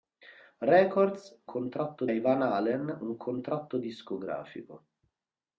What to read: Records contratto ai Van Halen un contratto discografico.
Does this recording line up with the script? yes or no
yes